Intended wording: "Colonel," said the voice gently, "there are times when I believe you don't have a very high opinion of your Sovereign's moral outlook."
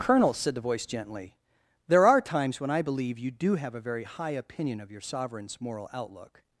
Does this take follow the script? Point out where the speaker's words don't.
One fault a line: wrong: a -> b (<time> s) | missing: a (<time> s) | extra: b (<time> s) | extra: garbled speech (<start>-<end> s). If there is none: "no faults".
wrong: don't -> do (3.3 s)